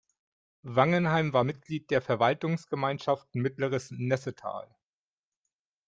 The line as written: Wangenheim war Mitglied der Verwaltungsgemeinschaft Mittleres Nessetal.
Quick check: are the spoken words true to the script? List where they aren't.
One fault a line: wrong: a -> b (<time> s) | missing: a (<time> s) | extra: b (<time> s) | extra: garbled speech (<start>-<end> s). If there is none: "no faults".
no faults